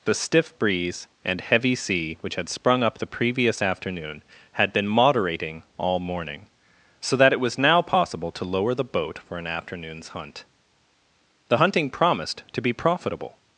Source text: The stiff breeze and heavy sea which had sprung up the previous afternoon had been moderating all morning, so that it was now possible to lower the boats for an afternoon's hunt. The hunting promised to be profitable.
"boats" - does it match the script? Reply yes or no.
no